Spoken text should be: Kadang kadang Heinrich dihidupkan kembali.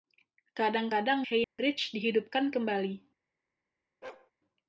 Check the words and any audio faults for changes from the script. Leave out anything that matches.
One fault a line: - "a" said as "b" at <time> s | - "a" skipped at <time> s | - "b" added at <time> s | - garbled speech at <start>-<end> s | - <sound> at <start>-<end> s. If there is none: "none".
- dropout at 1.4-1.6 s
- bark at 4.0-4.3 s